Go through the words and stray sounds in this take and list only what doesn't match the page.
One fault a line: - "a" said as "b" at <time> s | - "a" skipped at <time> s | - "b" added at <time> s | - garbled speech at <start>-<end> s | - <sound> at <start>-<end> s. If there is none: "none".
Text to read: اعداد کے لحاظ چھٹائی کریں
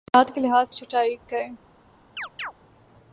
- chirp at 2.2-2.5 s